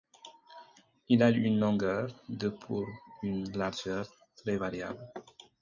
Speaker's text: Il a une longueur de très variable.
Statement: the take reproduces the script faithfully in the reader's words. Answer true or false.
false